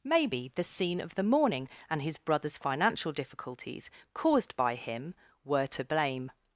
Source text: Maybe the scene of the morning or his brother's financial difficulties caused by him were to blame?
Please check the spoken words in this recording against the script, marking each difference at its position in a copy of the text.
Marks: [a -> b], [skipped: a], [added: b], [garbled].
Maybe the scene of the morning [or -> and] his brother's financial difficulties caused by him were to blame?